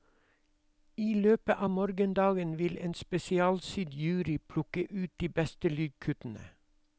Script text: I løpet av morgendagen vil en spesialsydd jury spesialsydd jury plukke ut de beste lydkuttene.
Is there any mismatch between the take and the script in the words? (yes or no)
yes